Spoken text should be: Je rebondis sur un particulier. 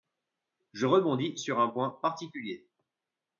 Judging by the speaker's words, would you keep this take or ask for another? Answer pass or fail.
fail